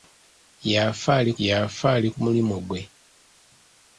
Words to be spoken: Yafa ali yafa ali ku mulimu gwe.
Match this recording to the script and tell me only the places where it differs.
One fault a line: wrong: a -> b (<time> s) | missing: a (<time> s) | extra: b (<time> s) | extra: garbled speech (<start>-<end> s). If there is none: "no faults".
no faults